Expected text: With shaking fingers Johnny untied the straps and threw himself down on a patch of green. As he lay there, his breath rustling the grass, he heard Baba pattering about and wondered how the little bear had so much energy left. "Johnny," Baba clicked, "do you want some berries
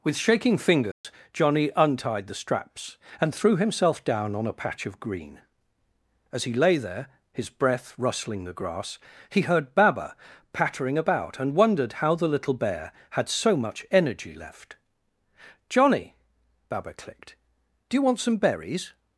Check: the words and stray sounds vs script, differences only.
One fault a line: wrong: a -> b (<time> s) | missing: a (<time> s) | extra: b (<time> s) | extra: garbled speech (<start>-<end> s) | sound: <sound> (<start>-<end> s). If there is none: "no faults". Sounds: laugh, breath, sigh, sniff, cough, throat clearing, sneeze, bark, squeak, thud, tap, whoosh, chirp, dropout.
sound: dropout (0.9-1.0 s)